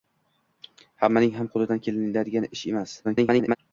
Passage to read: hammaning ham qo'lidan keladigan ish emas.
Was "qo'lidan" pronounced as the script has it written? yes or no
yes